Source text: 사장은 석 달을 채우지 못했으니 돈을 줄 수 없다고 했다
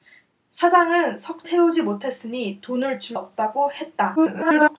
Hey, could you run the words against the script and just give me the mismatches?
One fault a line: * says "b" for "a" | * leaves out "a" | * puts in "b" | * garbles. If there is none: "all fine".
* leaves out "달을"
* leaves out "수"
* garbles